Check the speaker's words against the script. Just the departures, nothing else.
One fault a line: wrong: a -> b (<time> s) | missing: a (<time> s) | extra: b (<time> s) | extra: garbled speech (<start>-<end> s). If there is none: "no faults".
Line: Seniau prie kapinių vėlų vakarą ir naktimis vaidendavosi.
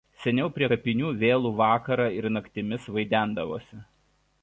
no faults